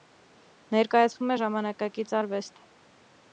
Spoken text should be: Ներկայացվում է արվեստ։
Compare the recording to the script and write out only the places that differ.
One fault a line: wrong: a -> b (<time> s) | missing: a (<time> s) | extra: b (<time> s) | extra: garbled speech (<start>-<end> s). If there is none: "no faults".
extra: ժամանակակից (1.4 s)